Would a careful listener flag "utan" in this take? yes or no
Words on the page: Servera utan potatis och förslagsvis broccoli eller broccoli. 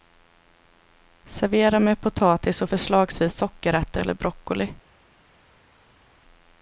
yes